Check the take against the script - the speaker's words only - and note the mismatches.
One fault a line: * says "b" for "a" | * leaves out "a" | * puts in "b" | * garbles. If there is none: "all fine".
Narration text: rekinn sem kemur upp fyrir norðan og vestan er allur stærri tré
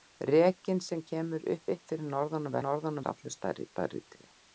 * puts in "upp"
* says "norðan" for "vestan"
* puts in "stærri"